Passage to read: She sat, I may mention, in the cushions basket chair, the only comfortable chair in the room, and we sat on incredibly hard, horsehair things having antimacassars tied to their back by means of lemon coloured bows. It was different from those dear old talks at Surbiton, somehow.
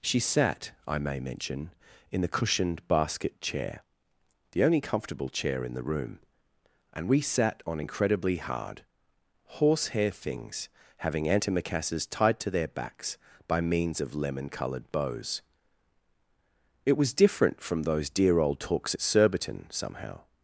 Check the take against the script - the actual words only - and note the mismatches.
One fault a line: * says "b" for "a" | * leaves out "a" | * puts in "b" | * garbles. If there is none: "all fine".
* says "cushioned" for "cushions"
* says "backs" for "back"